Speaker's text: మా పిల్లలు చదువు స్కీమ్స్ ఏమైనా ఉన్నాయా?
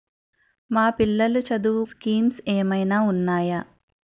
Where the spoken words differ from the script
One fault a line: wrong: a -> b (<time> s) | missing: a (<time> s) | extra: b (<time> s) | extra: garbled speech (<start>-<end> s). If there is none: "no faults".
no faults